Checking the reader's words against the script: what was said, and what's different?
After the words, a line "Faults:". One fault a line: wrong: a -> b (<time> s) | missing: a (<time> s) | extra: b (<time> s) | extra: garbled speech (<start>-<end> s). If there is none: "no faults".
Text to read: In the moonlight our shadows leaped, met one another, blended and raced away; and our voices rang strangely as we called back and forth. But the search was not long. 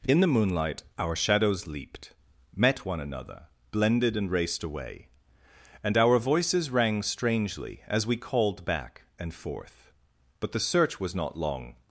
In the moonlight our shadows leaped, met one another, blended and raced away; and our voices rang strangely as we called back and forth. But the search was not long.
Faults:
no faults